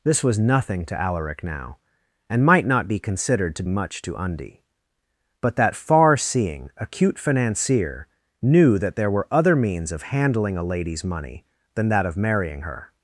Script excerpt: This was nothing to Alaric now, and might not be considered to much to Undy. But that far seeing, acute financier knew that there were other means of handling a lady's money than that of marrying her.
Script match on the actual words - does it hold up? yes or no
yes